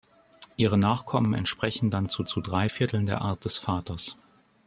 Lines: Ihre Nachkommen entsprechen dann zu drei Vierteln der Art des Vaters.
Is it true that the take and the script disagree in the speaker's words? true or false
true